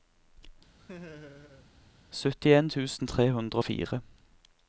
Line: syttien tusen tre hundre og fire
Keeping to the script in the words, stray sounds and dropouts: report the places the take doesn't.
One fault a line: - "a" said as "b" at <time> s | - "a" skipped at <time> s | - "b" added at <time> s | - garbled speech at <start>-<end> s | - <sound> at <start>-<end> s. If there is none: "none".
- laugh at 0.8-1.7 s